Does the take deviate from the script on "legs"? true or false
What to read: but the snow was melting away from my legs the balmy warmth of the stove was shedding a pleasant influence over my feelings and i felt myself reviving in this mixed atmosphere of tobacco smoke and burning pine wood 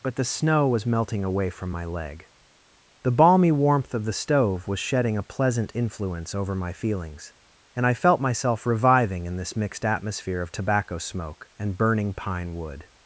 true